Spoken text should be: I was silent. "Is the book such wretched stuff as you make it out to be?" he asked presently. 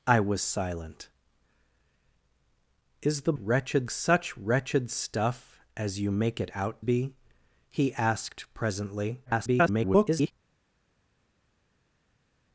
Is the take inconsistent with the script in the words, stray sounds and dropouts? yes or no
yes